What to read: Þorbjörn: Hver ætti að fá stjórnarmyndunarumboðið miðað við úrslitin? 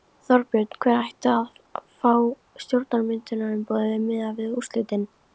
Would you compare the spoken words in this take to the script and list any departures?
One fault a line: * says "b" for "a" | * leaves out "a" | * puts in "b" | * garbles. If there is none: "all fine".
all fine